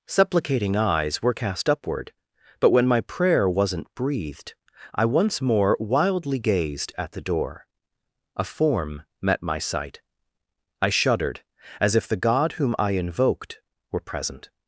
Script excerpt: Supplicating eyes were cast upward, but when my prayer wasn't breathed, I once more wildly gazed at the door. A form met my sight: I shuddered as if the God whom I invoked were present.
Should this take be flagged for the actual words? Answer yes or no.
no